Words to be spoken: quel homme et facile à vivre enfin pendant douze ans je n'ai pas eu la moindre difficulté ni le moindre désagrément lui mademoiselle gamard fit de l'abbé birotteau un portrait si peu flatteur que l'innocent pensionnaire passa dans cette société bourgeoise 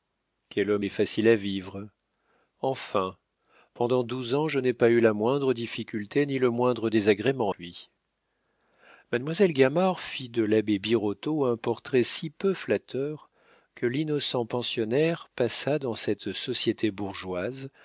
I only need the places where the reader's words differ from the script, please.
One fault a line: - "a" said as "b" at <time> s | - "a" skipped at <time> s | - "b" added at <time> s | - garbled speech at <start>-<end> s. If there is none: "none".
none